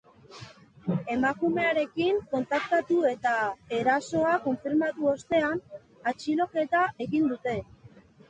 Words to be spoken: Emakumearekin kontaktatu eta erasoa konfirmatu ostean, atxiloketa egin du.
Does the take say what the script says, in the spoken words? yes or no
no